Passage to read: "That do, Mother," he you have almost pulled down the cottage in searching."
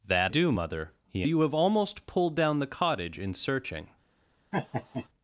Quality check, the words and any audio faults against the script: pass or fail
fail